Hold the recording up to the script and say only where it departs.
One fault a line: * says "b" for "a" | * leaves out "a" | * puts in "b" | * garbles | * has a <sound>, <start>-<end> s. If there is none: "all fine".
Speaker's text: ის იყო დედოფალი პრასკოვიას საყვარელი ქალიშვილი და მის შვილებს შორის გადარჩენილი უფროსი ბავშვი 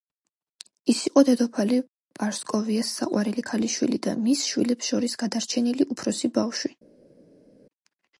all fine